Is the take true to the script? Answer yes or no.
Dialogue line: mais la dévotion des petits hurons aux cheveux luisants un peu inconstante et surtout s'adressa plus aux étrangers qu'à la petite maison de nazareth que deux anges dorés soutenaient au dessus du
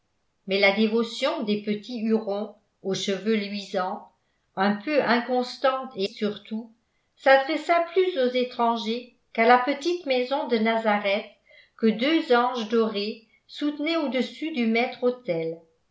yes